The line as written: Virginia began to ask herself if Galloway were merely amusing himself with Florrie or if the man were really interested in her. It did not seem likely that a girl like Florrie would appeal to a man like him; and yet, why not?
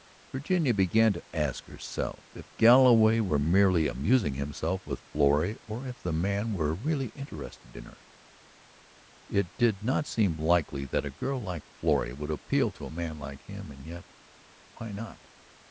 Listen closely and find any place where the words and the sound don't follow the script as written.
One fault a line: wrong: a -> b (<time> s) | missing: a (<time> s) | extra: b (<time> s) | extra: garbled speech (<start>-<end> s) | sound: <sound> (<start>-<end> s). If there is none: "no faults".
no faults